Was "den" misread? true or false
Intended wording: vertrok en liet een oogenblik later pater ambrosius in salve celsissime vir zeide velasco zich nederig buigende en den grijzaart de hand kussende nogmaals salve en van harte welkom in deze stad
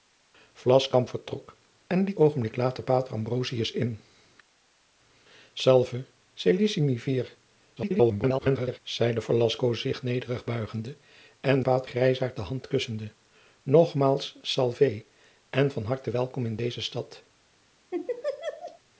true